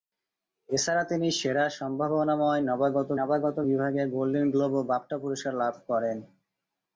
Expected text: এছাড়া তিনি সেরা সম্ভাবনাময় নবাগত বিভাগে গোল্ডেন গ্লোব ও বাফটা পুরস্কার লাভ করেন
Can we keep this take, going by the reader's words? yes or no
no